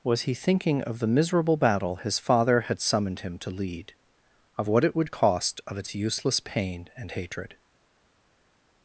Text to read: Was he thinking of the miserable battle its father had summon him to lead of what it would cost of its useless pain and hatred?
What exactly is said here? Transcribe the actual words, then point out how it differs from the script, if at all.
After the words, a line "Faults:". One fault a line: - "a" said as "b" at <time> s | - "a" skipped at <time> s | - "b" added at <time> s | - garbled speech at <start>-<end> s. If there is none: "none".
Was he thinking of the miserable battle his father had summoned him to lead of what it would cost of its useless pain and hatred?
Faults:
- "its" said as "his" at 1.9 s
- "summon" said as "summoned" at 2.8 s